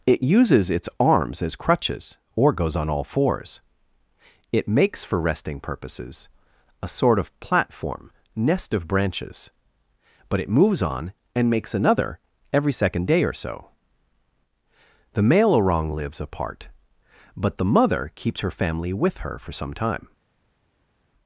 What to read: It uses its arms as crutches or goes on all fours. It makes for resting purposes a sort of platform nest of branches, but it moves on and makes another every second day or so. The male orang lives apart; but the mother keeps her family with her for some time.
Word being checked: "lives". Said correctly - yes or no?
yes